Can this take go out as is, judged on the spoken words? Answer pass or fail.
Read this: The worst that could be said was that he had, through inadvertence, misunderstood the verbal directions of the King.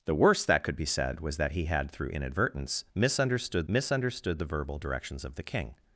fail